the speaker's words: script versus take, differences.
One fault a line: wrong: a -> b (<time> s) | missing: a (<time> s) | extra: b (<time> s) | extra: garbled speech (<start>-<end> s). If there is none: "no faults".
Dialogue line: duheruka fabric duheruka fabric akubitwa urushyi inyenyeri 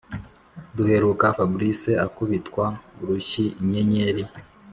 missing: duheruka fabric (1.8 s)